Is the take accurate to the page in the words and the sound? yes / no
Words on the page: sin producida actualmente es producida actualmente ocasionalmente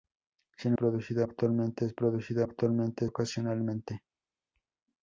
yes